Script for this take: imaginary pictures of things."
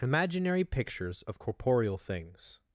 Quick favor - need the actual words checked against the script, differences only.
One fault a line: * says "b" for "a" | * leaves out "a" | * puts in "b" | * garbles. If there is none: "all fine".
* puts in "corporeal"